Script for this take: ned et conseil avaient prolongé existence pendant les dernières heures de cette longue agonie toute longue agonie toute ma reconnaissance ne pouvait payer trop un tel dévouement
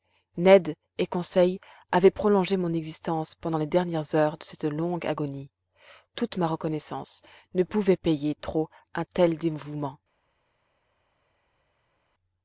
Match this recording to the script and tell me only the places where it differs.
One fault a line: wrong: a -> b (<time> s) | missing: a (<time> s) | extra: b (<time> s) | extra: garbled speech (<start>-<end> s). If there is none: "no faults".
extra: mon (2.6 s)
missing: longue agonie toute (6.4 s)